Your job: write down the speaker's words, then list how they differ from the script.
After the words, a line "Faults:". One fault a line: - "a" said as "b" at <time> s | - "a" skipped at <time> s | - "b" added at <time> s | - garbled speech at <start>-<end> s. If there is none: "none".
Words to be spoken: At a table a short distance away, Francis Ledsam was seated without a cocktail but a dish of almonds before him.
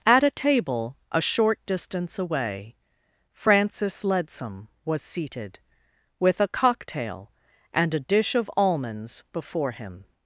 At a table a short distance away, Francis Ledsam was seated with a cocktail and a dish of almonds before him.
Faults:
- "without" said as "with" at 6.2 s
- "but" said as "and" at 7.7 s